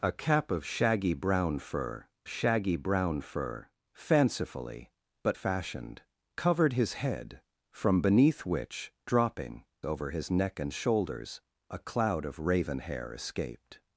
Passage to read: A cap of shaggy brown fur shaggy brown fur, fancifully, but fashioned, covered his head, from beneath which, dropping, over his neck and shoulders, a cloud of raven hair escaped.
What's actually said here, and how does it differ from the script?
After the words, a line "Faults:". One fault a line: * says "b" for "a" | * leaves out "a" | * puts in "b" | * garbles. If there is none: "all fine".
A cap of shaggy brown fur shaggy brown fur, fancifully, but fashioned, covered his head, from beneath which, dropping, over his neck and shoulders, a cloud of raven hair escaped.
Faults:
all fine